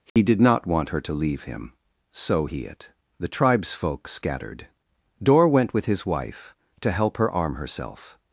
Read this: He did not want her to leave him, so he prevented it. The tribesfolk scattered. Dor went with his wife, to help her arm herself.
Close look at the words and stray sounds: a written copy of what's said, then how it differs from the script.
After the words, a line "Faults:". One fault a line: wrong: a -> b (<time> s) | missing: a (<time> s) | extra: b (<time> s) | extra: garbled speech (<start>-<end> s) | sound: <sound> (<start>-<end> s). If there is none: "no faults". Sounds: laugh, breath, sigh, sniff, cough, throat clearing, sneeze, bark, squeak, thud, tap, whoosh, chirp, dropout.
He did not want her to leave him, so he it. The tribesfolk scattered. Dor went with his wife, to help her arm herself.
Faults:
sound: dropout (0.1-0.2 s)
missing: prevented (2.6 s)